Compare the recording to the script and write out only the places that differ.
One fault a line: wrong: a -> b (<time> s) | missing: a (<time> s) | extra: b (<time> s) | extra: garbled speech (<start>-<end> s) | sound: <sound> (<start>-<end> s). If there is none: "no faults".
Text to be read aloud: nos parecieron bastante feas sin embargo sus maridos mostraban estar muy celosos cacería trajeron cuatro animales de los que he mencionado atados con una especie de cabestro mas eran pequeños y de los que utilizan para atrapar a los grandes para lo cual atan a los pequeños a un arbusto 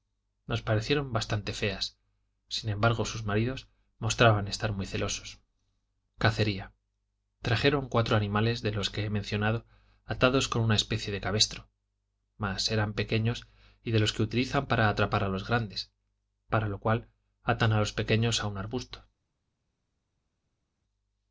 no faults